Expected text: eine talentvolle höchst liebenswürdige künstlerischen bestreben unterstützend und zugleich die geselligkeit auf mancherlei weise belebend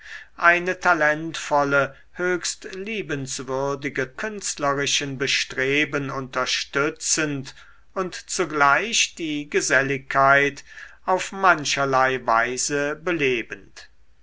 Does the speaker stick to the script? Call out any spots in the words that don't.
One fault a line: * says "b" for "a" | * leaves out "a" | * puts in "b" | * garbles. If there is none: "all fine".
all fine